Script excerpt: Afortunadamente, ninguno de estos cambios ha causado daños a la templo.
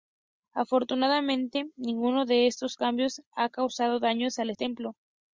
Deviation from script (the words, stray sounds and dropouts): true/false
false